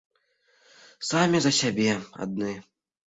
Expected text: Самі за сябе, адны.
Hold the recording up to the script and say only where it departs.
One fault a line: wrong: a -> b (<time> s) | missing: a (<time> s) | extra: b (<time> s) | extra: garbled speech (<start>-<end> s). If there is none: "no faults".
no faults